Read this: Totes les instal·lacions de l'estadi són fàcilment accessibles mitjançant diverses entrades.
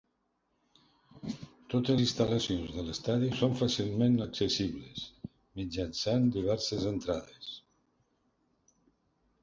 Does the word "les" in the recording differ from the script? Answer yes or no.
yes